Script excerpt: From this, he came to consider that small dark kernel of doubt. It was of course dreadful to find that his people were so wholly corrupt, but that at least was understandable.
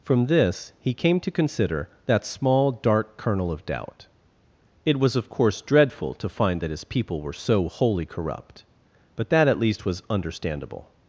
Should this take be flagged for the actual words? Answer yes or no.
no